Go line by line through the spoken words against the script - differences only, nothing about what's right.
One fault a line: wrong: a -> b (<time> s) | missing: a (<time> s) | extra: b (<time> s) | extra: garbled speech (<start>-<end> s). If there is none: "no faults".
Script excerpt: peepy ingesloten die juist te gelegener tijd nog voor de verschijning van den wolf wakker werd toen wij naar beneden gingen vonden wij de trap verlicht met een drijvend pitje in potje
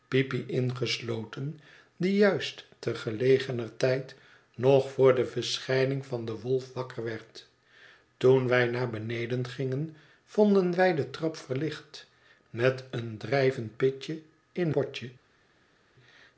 no faults